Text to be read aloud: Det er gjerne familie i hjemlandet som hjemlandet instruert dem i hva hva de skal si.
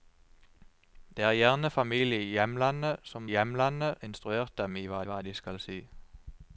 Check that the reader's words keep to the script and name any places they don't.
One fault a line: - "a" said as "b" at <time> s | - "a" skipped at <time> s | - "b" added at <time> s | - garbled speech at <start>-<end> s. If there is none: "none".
none